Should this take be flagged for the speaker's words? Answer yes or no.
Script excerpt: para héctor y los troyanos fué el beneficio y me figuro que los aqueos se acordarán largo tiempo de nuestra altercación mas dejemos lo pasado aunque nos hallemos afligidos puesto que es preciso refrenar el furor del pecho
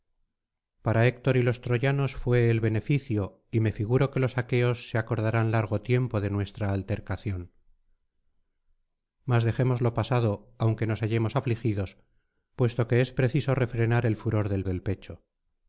yes